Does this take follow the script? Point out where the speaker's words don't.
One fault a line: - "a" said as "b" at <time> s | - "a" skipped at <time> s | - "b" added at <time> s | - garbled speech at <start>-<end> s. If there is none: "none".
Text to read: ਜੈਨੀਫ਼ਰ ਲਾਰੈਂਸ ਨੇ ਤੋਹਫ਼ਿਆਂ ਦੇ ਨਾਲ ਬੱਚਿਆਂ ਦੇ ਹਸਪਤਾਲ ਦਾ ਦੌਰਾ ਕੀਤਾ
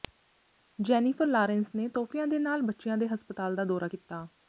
none